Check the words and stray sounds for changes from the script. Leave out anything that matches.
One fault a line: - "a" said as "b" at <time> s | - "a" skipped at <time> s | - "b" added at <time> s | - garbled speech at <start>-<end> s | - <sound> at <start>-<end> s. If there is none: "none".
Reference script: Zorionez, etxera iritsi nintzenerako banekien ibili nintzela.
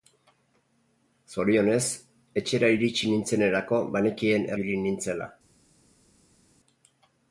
none